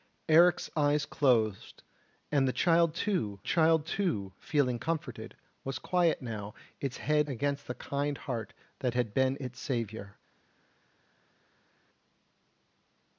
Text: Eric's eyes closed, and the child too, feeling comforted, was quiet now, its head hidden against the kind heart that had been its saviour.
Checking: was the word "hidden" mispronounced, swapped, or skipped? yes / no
yes